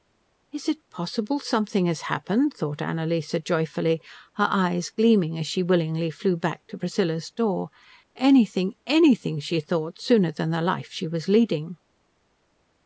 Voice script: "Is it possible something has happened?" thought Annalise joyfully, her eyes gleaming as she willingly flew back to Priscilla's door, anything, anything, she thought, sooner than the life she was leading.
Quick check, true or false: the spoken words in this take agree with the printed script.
true